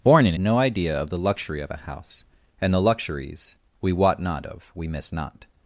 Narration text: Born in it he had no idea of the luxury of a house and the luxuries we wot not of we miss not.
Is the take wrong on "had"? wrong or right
wrong